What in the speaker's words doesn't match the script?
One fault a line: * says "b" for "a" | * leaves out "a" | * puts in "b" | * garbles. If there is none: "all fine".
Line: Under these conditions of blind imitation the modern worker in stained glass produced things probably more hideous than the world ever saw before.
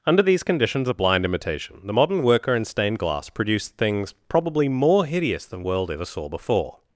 * leaves out "the"